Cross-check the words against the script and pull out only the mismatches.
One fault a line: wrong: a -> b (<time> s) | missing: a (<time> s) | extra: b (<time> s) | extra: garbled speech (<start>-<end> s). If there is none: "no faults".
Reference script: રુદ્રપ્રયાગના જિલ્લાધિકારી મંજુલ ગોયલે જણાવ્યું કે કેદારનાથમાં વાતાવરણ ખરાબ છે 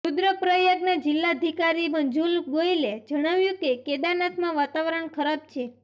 no faults